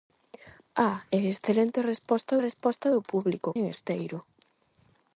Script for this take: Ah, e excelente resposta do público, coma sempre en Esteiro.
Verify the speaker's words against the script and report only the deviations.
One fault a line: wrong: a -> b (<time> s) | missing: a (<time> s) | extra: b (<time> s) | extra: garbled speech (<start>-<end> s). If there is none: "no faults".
extra: resposta (2.5 s)
missing: coma sempre (3.5 s)